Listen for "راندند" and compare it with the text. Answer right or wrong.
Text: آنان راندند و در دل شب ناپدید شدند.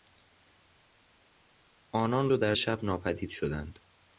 wrong